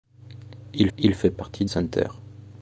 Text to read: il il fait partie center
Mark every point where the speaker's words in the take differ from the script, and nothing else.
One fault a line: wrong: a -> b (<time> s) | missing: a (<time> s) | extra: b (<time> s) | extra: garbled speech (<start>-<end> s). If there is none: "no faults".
no faults